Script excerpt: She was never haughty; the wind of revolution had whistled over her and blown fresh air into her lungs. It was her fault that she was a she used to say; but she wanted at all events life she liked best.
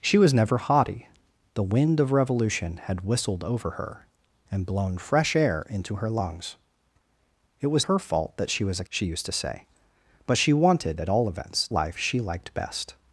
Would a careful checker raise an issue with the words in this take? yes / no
no